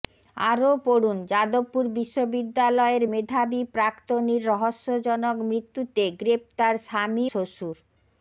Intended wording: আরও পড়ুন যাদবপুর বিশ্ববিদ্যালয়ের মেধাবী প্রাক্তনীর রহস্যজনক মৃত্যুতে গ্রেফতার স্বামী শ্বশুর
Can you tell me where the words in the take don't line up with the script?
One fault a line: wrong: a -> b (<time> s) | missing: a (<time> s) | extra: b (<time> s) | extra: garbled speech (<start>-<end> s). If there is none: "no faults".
no faults